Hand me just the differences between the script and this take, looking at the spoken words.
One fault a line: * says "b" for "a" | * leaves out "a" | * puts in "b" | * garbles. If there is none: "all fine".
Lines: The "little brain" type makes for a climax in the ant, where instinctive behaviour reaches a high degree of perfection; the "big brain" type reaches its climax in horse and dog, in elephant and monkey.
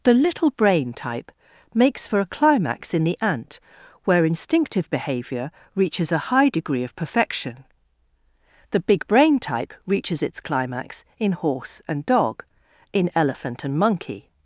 all fine